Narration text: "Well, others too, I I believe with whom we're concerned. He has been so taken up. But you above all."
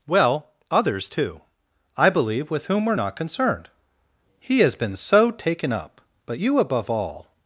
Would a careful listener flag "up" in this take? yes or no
no